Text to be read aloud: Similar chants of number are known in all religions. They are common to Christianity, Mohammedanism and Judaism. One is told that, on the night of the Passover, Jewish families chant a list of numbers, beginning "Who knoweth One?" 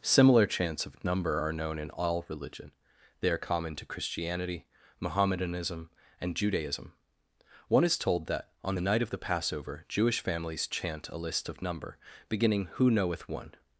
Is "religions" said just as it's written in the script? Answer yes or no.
no